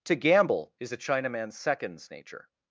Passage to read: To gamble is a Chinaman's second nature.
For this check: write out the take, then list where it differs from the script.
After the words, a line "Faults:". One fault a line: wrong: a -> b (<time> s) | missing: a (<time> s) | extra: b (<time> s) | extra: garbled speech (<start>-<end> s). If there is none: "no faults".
To gamble is a Chinaman's seconds nature.
Faults:
wrong: second -> seconds (1.6 s)